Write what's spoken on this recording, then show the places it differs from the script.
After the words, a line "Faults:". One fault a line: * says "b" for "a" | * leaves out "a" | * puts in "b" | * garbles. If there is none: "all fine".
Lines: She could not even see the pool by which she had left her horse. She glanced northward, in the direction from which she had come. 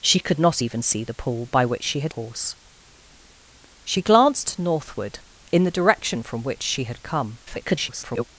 She could not even see the pool by which she had horse. She glanced northward, in the direction from which she had come. [garbled]
Faults:
* leaves out "left her"
* garbles